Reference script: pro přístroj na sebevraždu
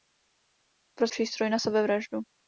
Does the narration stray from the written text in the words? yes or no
no